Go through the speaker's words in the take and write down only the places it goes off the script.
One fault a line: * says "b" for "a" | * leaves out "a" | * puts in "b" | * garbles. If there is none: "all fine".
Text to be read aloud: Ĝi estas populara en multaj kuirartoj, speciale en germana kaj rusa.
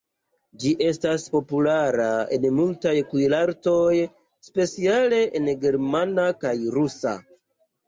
all fine